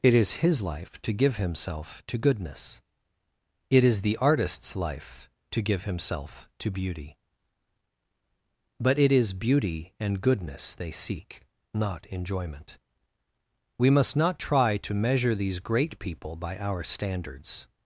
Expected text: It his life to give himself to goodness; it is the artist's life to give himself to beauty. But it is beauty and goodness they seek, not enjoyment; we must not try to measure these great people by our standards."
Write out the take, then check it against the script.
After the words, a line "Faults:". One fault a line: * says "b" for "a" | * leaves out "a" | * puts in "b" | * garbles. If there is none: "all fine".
It is his life to give himself to goodness; it is the artist's life to give himself to beauty. But it is beauty and goodness they seek, not enjoyment; we must not try to measure these great people by our standards."
Faults:
* puts in "is"